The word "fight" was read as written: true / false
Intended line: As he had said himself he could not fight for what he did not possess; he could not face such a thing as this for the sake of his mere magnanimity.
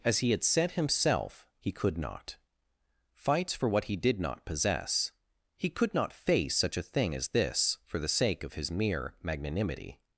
false